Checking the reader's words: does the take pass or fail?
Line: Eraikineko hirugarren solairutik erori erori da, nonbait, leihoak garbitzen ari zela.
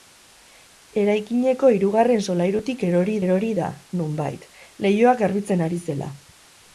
pass